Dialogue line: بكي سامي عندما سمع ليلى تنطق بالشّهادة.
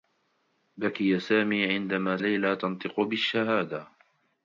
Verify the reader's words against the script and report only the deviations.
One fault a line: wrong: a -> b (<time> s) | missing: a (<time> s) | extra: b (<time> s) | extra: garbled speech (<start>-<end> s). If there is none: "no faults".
missing: سمع (2.2 s)